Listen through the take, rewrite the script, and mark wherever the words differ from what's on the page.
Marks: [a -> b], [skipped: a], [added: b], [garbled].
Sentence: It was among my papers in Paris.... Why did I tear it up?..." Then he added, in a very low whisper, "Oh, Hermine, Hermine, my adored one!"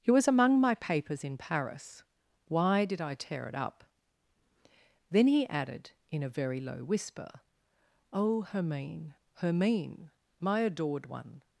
It was among my papers in Paris.... Why did I tear it up?..." Then he added, in a very low whisper, "Oh, Hermine, Hermine, my adored one!"